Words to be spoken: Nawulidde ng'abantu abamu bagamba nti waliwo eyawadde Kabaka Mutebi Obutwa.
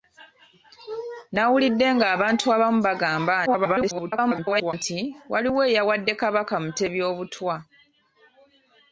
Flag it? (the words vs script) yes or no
yes